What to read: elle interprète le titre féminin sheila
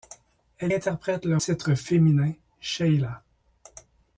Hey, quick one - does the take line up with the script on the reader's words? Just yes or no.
yes